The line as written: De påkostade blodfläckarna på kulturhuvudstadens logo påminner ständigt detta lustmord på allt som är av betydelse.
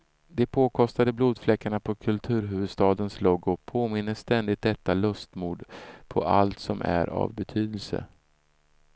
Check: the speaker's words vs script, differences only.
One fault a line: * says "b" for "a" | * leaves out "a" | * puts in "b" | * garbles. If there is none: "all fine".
all fine